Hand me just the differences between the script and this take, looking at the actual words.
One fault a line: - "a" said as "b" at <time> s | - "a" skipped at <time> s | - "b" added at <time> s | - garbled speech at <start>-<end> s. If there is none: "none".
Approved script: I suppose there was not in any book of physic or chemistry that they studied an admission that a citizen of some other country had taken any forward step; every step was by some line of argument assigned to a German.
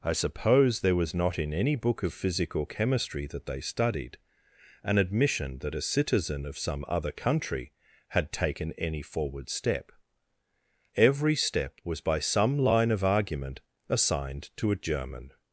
none